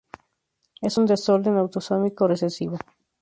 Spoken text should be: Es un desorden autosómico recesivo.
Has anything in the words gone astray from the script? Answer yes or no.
no